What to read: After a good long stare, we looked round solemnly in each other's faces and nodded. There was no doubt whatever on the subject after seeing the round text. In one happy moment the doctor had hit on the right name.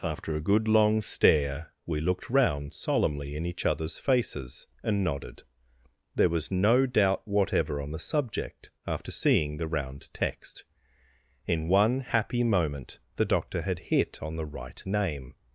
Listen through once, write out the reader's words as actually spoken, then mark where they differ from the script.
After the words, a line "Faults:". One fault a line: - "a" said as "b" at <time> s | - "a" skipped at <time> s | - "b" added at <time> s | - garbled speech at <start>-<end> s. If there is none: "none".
After a good long stare, we looked round solemnly in each other's faces and nodded. There was no doubt whatever on the subject after seeing the round text. In one happy moment the doctor had hit on the right name.
Faults:
none